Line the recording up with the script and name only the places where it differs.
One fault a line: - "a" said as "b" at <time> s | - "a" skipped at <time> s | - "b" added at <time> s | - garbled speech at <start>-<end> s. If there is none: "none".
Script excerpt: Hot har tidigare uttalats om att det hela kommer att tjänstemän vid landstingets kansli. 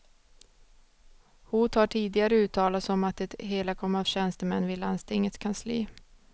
none